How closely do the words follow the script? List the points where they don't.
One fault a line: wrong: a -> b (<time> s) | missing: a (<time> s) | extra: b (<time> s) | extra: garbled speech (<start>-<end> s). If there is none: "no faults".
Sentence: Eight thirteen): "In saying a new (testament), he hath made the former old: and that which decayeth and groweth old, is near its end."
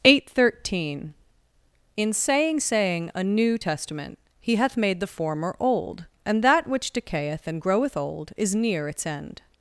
extra: saying (2.6 s)